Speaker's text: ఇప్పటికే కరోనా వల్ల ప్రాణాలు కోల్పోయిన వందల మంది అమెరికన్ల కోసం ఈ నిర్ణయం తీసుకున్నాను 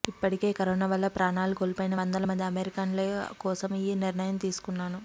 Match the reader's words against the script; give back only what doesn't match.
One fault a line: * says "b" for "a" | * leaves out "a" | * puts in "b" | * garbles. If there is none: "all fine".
all fine